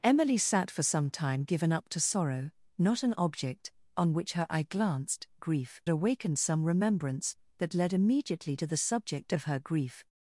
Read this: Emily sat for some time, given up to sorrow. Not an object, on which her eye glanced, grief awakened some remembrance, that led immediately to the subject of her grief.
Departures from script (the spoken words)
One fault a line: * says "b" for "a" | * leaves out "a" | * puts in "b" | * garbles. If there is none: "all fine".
all fine